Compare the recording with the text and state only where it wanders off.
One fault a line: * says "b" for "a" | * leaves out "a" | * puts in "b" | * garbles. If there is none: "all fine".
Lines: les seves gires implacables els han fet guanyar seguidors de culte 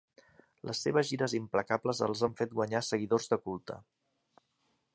all fine